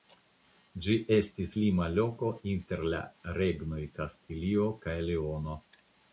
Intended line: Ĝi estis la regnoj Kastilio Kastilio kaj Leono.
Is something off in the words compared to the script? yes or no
yes